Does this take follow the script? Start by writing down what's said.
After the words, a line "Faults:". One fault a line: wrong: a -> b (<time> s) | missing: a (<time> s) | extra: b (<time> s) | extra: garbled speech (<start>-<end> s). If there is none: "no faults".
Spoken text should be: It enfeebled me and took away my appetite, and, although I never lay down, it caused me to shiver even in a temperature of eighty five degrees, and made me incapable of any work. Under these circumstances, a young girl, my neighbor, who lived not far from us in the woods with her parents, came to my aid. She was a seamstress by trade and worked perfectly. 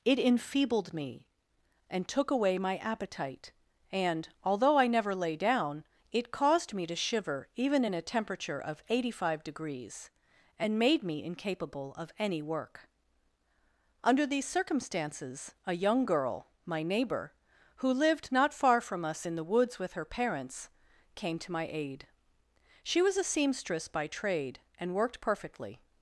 It enfeebled me and took away my appetite, and, although I never lay down, it caused me to shiver even in a temperature of eighty five degrees, and made me incapable of any work. Under these circumstances, a young girl, my neighbor, who lived not far from us in the woods with her parents, came to my aid. She was a seamstress by trade and worked perfectly.
Faults:
no faults